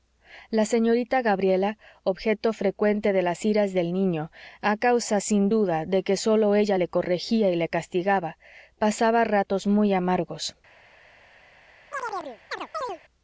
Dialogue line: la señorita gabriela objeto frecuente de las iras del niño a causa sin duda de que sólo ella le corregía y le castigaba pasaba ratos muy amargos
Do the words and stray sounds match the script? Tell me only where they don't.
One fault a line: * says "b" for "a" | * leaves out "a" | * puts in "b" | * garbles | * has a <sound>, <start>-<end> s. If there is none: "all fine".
* has a chirp, 11.9-13.0 s